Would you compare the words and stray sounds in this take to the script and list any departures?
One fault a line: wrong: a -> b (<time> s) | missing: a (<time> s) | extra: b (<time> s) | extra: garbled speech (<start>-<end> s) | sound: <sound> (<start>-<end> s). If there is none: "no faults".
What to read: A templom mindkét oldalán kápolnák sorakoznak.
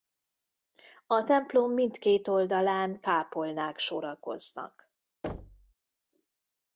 sound: thud (5.2-5.7 s)